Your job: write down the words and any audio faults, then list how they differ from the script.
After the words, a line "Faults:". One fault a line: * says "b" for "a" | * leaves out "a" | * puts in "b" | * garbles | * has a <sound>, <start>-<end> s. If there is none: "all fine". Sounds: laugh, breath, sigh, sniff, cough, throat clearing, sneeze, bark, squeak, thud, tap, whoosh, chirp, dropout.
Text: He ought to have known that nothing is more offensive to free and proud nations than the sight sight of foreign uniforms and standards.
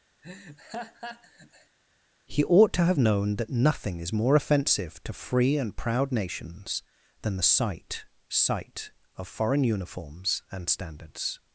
He ought to have known that nothing is more offensive to free and proud nations than the sight sight of foreign uniforms and standards.
Faults:
* has a laugh, 0.2-1.8 s